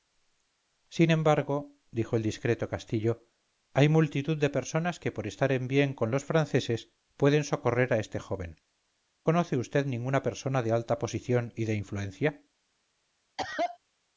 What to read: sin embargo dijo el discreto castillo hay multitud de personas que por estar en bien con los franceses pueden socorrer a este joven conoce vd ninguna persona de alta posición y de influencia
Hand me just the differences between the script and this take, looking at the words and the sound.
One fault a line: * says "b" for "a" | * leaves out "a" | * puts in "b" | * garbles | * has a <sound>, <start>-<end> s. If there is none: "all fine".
* has a cough, 13.4-13.8 s